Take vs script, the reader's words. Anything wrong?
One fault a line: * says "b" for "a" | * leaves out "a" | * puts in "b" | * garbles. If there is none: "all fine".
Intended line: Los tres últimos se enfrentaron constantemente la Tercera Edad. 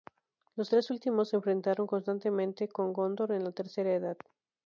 * puts in "con Gondor en"